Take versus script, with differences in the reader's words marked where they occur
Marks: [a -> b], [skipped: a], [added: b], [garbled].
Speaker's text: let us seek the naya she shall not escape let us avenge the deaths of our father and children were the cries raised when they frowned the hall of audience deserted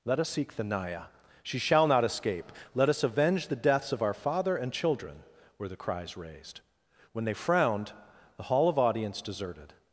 let us seek the naya she shall not escape let us avenge the deaths of our father and children were the cries raised when they frowned the hall of audience deserted